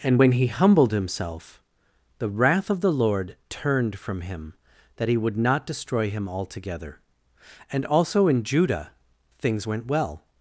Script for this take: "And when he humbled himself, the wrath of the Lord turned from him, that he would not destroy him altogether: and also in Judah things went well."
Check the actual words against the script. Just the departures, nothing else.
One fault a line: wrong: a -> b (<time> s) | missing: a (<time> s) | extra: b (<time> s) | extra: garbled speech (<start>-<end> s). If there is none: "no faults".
no faults